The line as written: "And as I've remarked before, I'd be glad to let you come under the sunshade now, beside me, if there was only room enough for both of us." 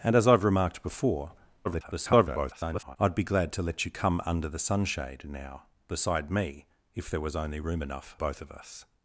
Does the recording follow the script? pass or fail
fail